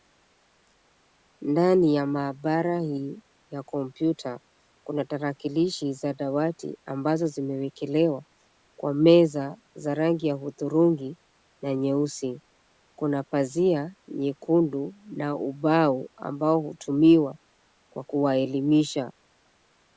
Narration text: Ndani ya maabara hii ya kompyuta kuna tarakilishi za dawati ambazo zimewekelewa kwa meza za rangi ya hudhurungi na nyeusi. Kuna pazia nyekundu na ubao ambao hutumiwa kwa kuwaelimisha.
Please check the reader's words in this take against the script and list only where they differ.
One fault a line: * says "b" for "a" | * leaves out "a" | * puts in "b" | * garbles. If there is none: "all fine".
all fine